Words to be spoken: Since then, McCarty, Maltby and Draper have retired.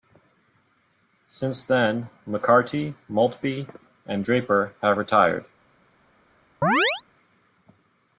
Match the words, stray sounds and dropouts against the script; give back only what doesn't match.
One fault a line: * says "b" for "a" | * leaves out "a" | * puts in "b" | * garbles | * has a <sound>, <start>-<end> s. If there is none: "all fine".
* has a chirp, 6.6-7.0 s